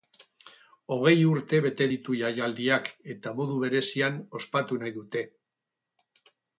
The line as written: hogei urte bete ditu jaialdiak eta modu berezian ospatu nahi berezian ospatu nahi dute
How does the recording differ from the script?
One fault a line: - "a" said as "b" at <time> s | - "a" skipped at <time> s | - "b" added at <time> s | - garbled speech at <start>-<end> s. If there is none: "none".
- "berezian ospatu nahi" skipped at 5.0 s